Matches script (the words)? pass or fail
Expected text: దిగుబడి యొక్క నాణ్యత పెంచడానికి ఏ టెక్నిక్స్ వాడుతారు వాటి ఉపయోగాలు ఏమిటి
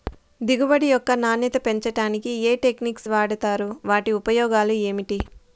pass